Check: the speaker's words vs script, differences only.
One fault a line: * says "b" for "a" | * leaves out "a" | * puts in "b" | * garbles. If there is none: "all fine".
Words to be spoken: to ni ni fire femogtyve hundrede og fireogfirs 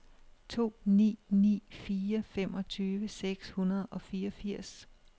* puts in "seks"